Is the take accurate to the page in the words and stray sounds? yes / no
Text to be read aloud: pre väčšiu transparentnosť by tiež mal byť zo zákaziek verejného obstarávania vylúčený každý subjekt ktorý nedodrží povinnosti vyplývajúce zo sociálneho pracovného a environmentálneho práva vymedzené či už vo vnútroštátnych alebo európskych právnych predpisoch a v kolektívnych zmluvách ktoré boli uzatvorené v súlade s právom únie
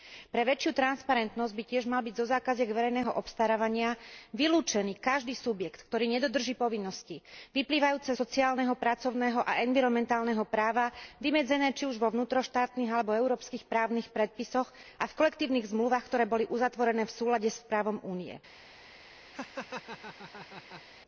no